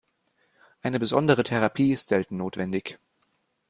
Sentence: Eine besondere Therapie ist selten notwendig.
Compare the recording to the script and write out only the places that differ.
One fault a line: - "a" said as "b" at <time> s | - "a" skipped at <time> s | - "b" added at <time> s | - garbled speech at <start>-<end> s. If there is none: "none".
none